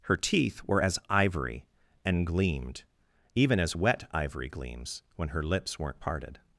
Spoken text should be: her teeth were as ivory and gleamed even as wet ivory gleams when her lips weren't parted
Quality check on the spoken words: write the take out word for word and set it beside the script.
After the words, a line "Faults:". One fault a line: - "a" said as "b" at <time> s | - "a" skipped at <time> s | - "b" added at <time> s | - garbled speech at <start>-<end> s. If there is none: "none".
her teeth were as ivory and gleamed even as wet ivory gleams when her lips weren't parted
Faults:
none